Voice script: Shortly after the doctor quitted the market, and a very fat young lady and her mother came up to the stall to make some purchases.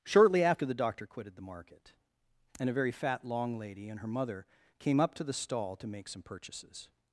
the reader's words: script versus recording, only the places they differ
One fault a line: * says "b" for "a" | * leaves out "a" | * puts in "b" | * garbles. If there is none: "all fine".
* says "long" for "young"